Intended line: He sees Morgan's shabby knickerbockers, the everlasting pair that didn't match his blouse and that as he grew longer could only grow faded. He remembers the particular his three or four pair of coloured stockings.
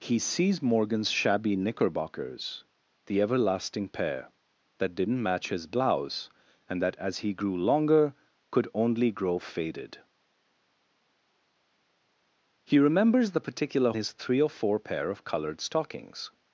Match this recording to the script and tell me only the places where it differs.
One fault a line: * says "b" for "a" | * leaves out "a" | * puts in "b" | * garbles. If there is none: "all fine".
all fine